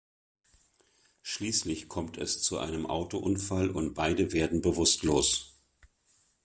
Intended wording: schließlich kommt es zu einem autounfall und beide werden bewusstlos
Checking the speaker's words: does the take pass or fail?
pass